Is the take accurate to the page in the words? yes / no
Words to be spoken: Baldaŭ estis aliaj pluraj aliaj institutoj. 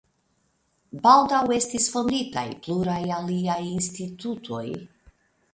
no